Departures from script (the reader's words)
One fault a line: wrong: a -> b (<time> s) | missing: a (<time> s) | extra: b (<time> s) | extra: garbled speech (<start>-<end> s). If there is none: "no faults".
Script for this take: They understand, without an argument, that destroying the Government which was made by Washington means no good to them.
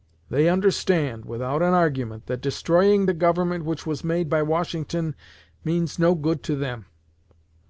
no faults